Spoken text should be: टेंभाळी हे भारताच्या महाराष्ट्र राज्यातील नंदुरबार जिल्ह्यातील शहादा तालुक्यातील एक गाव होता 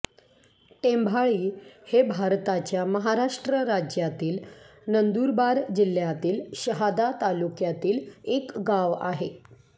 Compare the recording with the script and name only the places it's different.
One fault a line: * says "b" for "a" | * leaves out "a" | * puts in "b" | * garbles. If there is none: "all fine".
* says "आहे" for "होता"